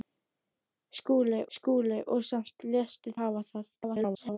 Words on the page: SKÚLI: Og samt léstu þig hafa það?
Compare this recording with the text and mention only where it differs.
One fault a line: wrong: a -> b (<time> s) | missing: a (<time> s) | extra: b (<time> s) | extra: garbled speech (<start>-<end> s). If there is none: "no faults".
extra: skúli (1.6 s)
missing: þig (3.2 s)
extra: garbled speech (3.7-4.4 s)